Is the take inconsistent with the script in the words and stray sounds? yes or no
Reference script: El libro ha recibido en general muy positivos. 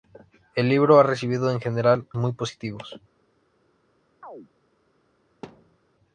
yes